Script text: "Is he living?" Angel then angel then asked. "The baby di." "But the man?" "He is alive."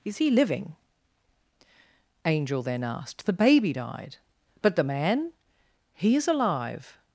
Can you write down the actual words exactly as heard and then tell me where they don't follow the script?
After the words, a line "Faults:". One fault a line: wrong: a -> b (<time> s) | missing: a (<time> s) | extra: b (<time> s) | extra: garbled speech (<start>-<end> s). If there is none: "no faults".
"Is he living?" Angel then asked. "The baby died." "But the man?" "He is alive."
Faults:
missing: angel then (2.8 s)
wrong: di -> died (3.7 s)